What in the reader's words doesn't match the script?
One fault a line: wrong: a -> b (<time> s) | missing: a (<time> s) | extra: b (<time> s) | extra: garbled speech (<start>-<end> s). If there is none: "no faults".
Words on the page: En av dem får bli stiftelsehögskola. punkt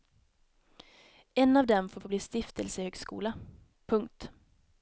extra: får (2.0 s)